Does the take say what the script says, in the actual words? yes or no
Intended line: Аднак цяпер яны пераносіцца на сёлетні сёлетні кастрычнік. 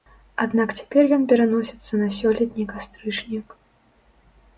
no